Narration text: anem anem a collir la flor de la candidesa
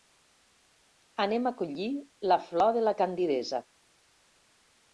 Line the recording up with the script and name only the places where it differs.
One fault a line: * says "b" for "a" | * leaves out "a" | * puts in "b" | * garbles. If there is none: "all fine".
* leaves out "anem"